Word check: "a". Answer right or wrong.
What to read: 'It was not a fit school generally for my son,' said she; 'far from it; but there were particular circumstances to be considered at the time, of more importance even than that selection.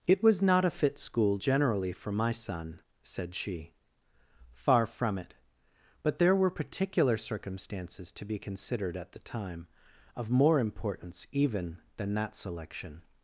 right